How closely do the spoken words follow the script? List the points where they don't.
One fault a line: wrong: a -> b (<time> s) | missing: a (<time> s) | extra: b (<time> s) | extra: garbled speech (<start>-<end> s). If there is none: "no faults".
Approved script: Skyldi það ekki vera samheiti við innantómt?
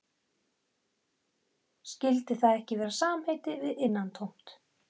no faults